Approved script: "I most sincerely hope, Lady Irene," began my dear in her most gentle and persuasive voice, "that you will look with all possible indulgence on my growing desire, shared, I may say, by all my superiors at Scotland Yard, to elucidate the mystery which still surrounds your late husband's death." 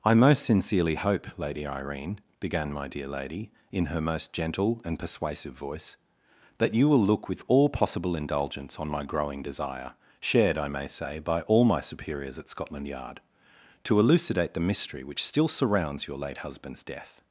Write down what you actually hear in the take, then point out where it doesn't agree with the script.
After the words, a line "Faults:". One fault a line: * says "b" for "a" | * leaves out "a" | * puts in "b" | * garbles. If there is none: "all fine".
"I most sincerely hope, Lady Irene," began my dear lady, in her most gentle and persuasive voice, "that you will look with all possible indulgence on my growing desire, shared, I may say, by all my superiors at Scotland Yard, to elucidate the mystery which still surrounds your late husband's death."
Faults:
* puts in "lady"